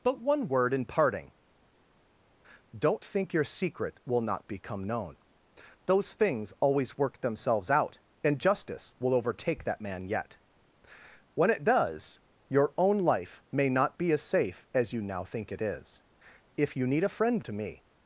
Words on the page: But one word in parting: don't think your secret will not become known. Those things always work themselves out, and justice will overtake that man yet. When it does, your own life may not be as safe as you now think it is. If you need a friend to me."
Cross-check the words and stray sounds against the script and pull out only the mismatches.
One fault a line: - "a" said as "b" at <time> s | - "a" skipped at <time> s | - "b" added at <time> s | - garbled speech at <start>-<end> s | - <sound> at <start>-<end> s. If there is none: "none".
none